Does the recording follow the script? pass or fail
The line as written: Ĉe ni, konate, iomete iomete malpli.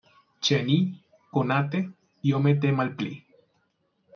fail